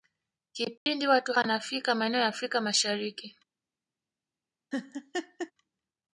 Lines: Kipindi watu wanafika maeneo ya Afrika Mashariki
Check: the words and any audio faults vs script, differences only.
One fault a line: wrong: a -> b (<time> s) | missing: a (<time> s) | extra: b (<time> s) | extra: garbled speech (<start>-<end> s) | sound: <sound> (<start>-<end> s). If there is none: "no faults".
sound: dropout (0.8-0.9 s)
sound: laugh (4.7-5.5 s)